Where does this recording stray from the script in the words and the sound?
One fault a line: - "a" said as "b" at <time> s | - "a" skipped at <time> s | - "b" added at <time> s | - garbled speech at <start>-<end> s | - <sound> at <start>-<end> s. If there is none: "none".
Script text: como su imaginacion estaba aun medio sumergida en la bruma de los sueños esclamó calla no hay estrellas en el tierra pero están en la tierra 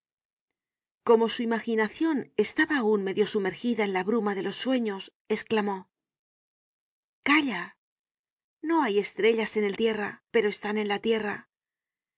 none